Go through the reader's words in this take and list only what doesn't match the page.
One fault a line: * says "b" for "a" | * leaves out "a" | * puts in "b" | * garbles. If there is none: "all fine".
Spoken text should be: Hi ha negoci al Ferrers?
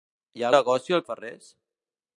all fine